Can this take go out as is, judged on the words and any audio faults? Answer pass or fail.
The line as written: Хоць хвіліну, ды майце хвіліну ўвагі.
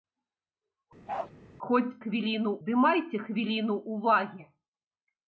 fail